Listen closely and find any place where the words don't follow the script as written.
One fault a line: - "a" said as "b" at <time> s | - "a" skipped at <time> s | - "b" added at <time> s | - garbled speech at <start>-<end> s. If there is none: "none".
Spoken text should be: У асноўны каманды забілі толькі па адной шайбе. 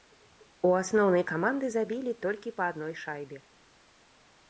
none